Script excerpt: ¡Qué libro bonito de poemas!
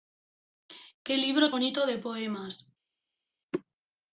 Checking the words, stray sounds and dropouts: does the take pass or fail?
pass